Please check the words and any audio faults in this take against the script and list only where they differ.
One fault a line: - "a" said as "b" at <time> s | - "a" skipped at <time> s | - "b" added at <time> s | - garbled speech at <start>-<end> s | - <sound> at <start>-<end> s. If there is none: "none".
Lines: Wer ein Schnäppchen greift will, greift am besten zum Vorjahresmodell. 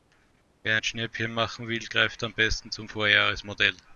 - "greift" said as "machen" at 1.3 s